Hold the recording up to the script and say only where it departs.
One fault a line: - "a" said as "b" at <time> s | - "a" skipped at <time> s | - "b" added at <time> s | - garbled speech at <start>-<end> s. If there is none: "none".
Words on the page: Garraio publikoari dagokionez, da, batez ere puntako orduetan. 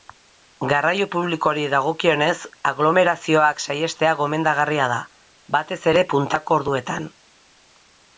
- "aglomerazioak saihestea gomendagarria" added at 2.7 s